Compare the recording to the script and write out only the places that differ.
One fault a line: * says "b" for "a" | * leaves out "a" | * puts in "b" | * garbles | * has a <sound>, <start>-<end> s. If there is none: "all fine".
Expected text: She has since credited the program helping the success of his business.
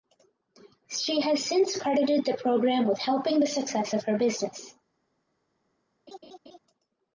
* puts in "with"
* says "her" for "his"
* has a laugh, 6.1-6.6 s